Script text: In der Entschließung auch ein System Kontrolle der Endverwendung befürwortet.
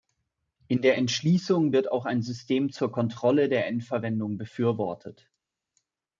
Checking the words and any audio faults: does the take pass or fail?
fail